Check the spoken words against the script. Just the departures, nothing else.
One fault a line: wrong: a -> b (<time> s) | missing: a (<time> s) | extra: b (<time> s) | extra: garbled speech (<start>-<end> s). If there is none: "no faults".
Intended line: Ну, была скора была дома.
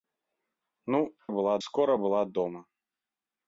no faults